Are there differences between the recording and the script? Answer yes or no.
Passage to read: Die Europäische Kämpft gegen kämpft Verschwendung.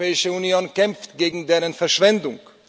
yes